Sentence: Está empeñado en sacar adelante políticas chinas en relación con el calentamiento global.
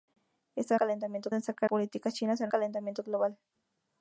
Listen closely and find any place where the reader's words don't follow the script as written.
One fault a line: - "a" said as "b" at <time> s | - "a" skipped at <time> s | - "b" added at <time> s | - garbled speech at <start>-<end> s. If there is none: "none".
- "empeñado" said as "calentamiento" at 0.8 s
- "adelante" skipped at 1.7 s
- "relación con el" skipped at 2.5 s